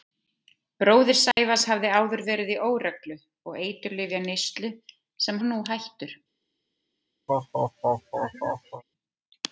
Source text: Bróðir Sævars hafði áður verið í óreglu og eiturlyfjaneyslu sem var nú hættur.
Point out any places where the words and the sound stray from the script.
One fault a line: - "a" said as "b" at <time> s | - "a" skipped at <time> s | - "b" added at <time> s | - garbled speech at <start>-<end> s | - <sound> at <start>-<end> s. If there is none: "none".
- dropout at 1.3-1.4 s
- laugh at 7.3-8.8 s